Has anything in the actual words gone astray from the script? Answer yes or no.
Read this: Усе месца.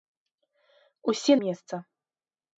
no